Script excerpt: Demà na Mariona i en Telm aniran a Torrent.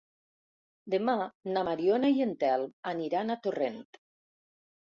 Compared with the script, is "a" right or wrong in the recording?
right